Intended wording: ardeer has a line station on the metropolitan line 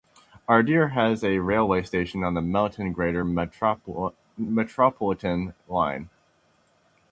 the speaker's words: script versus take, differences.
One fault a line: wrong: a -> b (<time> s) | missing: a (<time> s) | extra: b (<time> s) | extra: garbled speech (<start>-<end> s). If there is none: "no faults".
wrong: line -> railway (1.4 s)
extra: melton greater (2.4 s)